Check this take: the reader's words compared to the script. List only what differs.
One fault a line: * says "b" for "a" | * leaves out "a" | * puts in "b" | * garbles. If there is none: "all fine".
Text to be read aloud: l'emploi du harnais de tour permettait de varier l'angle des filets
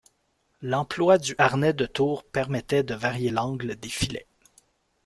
all fine